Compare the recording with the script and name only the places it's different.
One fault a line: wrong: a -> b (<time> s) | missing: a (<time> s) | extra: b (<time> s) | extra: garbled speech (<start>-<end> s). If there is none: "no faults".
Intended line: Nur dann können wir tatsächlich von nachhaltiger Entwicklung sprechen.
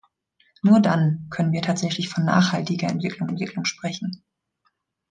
extra: Entwicklung (3.3 s)